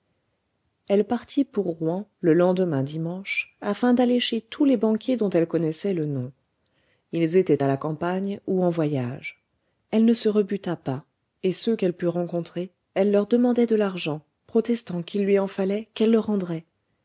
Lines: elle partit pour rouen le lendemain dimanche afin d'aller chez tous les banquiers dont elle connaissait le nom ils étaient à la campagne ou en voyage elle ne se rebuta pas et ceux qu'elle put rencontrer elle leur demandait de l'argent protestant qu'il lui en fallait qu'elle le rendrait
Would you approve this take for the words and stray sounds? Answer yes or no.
yes